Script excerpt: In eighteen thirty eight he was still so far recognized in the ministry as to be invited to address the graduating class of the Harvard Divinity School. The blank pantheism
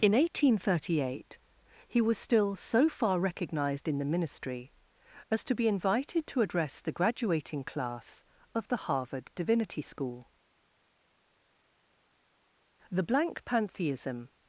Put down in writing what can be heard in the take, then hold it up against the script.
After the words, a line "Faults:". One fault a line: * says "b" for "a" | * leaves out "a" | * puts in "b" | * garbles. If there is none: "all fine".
In eighteen thirty eight he was still so far recognized in the ministry as to be invited to address the graduating class of the Harvard Divinity School. The blank pantheism
Faults:
all fine